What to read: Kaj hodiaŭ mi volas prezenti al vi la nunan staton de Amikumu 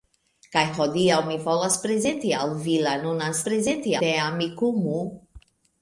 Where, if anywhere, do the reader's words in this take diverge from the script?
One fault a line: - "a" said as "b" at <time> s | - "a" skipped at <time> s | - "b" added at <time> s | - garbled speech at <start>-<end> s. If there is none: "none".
- "staton" said as "prezenti" at 3.5 s